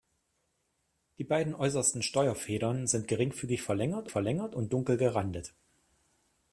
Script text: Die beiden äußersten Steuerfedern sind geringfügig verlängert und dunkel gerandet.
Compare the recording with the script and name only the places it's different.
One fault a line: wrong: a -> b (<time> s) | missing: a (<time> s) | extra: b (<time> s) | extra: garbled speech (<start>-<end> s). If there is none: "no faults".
extra: verlängert (4.1 s)